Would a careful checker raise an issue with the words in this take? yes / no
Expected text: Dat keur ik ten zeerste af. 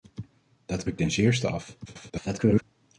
yes